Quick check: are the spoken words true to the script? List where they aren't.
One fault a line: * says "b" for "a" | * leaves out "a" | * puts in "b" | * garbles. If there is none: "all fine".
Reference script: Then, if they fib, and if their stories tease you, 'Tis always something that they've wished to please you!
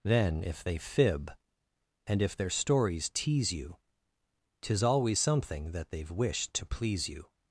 all fine